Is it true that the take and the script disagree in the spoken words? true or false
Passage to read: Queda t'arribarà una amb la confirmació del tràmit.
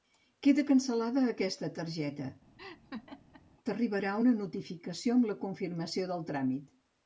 true